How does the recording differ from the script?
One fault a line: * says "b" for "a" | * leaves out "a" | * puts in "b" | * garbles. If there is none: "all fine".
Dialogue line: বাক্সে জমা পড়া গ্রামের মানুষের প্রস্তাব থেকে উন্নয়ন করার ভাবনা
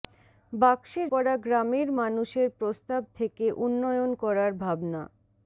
* leaves out "জমা"